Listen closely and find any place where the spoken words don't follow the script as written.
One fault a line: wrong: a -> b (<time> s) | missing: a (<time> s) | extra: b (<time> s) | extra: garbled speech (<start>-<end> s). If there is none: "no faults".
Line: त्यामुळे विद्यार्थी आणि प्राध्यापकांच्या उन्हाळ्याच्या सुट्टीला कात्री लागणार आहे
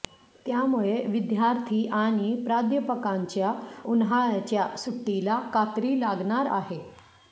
no faults